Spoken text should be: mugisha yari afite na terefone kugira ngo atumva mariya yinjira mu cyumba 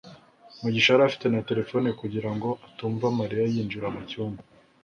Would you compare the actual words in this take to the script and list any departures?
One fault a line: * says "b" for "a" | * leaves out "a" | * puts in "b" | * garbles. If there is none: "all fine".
all fine